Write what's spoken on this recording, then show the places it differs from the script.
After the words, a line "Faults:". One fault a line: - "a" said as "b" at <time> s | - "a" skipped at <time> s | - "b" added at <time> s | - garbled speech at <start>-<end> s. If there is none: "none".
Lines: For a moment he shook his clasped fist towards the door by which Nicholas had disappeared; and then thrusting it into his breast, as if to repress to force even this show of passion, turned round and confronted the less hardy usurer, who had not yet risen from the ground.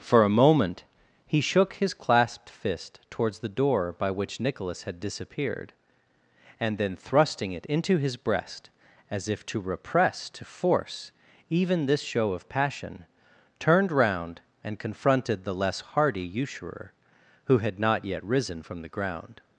For a moment he shook his clasped fist towards the door by which Nicholas had disappeared; and then thrusting it into his breast, as if to repress to force even this show of passion, turned round and confronted the less hardy usurer, who had not yet risen from the ground.
Faults:
none